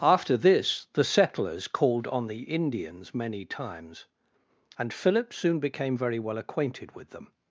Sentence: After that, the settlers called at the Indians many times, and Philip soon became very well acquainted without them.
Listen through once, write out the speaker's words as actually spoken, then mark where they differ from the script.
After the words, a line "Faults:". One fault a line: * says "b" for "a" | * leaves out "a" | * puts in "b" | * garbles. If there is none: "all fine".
After this, the settlers called on the Indians many times, and Philip soon became very well acquainted with them.
Faults:
* says "this" for "that"
* says "on" for "at"
* says "with" for "without"